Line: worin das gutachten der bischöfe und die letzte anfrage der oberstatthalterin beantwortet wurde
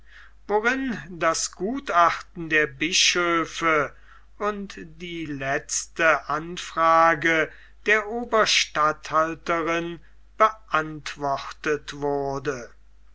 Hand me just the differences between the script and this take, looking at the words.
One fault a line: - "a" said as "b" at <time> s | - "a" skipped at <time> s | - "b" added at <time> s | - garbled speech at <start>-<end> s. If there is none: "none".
none